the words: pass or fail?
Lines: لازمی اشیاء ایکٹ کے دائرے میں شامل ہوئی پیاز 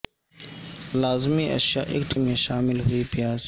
fail